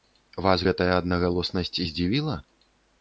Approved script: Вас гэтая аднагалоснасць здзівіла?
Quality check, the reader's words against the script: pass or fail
pass